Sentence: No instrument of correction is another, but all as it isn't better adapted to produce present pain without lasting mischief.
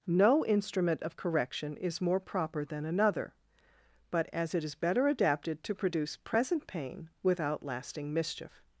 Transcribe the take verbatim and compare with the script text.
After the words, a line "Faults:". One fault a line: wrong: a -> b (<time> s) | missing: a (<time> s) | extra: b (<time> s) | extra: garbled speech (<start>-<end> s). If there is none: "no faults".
No instrument of correction is more proper than another, but as it is better adapted to produce present pain without lasting mischief.
Faults:
extra: more proper than (2.0 s)
missing: all (4.3 s)
wrong: isn't -> is (4.6 s)